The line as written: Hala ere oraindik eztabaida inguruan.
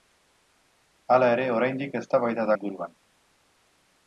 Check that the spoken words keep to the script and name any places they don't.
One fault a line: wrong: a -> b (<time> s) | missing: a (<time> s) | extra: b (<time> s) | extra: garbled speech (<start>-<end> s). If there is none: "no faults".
no faults